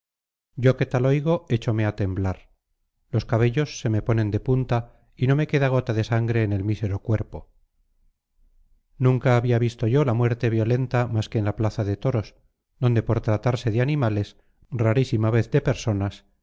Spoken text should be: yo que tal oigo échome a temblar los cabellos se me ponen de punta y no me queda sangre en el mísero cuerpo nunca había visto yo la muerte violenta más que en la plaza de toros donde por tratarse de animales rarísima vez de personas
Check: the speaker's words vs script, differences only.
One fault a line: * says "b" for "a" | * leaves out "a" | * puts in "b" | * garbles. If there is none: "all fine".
* puts in "gota de"